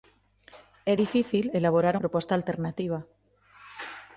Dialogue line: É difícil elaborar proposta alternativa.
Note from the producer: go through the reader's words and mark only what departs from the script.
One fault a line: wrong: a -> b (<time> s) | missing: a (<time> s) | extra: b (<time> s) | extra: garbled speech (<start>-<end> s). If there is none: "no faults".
no faults